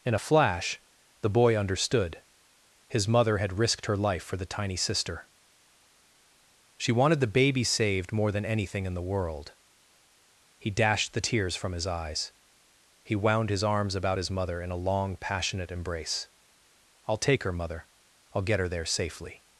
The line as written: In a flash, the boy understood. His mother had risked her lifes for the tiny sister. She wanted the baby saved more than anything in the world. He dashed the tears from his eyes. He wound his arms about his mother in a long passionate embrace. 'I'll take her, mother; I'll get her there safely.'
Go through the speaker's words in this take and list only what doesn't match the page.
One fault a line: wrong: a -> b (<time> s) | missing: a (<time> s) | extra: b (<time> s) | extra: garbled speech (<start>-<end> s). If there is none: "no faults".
wrong: lifes -> life (4.0 s)